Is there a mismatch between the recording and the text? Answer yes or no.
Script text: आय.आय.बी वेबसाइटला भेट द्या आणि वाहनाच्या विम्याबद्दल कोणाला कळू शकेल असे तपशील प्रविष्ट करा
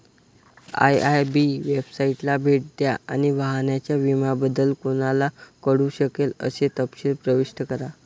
no